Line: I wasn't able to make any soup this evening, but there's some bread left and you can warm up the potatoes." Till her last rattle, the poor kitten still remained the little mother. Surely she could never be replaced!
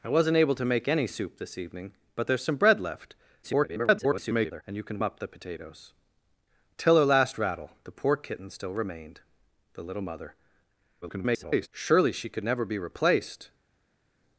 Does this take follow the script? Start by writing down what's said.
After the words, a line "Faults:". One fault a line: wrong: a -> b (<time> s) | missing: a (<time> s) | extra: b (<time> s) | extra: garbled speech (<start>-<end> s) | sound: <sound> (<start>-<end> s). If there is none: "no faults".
I wasn't able to make any soup this evening, but there's some bread left [garbled] and you can up the potatoes." Till her last rattle, the poor kitten still remained the little mother. [garbled] Surely she could never be replaced!
Faults:
extra: garbled speech (3.4-4.6 s)
missing: warm (5.0 s)
extra: garbled speech (11.0-11.7 s)